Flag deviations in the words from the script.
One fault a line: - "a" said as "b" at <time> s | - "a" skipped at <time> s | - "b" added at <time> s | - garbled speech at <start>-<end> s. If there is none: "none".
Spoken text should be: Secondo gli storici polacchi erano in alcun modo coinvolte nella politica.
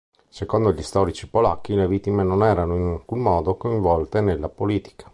- "le vittime non" added at 1.8 s